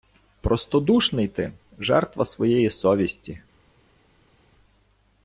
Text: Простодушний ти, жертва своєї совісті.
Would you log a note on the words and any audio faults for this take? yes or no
no